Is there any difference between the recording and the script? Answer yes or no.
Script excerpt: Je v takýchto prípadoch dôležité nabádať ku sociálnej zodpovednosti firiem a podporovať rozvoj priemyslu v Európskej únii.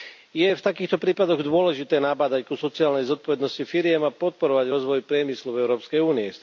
no